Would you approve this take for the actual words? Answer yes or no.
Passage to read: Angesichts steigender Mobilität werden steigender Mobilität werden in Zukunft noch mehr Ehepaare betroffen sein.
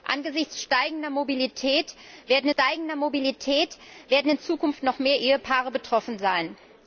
yes